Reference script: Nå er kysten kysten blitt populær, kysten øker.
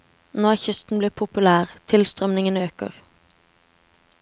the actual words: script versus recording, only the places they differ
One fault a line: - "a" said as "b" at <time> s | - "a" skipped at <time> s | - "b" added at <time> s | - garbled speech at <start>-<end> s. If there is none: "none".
- "kysten" skipped at 1.0 s
- "kysten" said as "tilstrømningen" at 1.9 s